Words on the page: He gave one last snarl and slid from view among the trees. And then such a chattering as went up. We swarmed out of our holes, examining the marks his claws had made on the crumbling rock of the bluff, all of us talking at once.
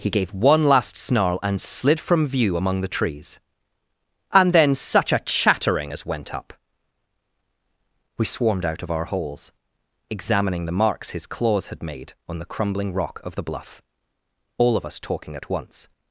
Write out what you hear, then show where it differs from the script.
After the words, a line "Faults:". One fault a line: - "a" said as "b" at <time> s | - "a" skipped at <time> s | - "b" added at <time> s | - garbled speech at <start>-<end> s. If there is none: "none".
He gave one last snarl and slid from view among the trees. And then such a chattering as went up. We swarmed out of our holes, examining the marks his claws had made on the crumbling rock of the bluff, all of us talking at once.
Faults:
none